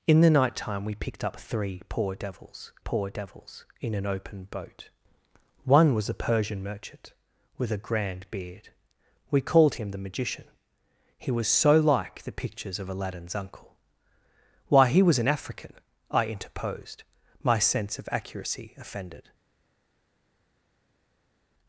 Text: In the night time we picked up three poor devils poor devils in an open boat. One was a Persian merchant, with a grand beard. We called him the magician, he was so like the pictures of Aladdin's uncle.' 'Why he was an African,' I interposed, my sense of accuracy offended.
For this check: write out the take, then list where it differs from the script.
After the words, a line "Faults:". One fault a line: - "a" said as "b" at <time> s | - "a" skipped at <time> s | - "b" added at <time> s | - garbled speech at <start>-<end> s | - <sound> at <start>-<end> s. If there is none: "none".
In the night time we picked up three poor devils poor devils in an open boat. One was a Persian merchant, with a grand beard. We called him the magician, he was so like the pictures of Aladdin's uncle.' 'Why he was an African,' I interposed, my sense of accuracy offended.
Faults:
none